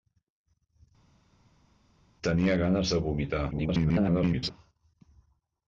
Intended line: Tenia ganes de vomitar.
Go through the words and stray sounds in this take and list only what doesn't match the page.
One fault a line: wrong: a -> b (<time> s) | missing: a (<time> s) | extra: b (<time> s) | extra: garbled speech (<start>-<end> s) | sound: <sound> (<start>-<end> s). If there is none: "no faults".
extra: garbled speech (3.5-4.5 s)